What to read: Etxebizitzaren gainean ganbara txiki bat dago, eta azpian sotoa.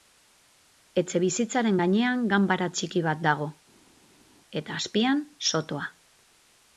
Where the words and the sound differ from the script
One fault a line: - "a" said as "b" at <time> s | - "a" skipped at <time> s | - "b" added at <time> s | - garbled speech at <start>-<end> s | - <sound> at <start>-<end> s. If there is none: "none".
none